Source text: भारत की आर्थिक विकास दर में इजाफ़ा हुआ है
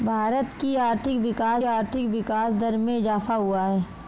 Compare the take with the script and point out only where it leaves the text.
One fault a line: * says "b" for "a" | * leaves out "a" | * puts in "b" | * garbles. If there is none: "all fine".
* puts in "आर्थिक विकास"